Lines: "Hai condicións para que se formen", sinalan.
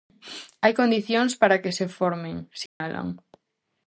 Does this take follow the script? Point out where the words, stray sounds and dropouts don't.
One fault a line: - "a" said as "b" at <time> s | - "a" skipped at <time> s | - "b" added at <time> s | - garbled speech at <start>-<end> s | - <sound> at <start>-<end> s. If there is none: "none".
- dropout at 2.7-2.8 s